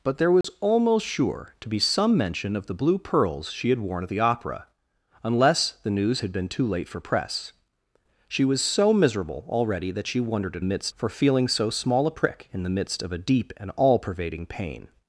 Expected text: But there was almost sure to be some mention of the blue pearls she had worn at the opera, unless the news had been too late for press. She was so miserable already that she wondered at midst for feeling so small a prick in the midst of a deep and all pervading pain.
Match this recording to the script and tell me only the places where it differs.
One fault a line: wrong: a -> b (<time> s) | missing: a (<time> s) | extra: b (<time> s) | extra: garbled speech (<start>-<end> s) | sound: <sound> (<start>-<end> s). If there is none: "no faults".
sound: dropout (0.4-0.4 s)